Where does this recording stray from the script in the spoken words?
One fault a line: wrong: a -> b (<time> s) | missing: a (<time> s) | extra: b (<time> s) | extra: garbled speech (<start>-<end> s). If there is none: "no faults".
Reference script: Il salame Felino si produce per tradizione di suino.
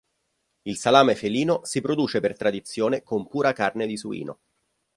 extra: con pura carne (3.0 s)